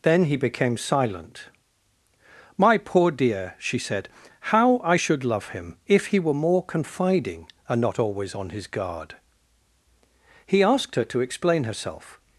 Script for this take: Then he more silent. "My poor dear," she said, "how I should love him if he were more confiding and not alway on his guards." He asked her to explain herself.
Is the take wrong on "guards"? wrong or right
wrong